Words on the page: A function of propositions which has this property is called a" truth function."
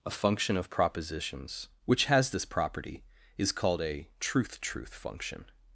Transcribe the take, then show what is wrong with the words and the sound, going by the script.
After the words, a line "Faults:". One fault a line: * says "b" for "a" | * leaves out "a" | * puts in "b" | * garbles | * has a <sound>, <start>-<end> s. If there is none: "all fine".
A function of propositions which has this property is called a" truth truth function."
Faults:
* puts in "truth"